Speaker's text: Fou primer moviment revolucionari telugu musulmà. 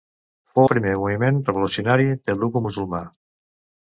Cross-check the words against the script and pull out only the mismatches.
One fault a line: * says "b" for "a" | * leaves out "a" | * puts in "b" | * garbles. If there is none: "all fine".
all fine